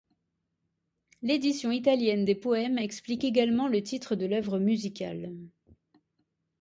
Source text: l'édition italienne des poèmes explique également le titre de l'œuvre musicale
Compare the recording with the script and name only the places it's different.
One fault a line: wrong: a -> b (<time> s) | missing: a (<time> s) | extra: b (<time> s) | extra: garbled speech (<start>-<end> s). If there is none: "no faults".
no faults